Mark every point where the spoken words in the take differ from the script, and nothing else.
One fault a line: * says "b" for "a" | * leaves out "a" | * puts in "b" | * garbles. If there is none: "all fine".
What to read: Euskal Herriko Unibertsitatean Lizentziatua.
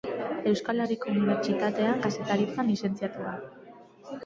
* puts in "Kazetaritzan"